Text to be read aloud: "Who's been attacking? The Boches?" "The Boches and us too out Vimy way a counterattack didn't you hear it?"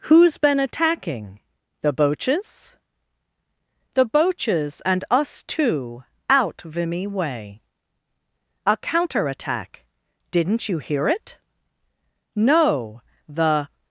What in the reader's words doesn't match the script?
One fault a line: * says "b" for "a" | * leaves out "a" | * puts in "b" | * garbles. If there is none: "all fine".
* puts in "No the"